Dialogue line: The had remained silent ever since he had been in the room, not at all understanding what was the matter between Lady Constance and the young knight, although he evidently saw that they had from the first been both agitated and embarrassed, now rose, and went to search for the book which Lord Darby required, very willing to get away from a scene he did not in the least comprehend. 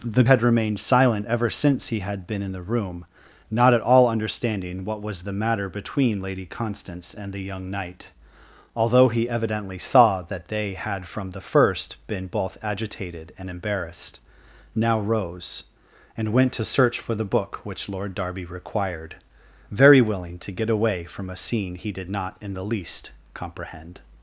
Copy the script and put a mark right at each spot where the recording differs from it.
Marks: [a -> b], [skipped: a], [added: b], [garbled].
The had remained silent ever since he had been in the room, not at all understanding what was the matter between Lady Constance and the young knight, although he evidently saw that they had from the first been both agitated and embarrassed, now rose, and went to search for the book which Lord Darby required, very willing to get away from a scene he did not in the least comprehend.